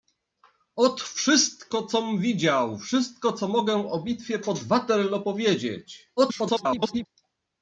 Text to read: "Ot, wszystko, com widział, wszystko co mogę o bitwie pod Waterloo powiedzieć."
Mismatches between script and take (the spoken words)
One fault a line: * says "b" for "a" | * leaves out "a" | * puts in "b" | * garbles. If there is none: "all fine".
* garbles